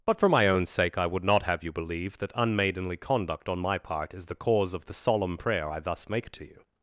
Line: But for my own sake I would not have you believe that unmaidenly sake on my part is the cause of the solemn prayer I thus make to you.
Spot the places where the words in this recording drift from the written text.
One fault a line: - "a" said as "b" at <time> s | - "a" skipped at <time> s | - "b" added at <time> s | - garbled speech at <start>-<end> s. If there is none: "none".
- "sake" said as "conduct" at 3.0 s